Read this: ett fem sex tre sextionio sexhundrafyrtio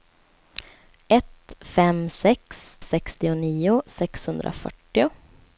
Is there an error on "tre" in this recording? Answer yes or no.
yes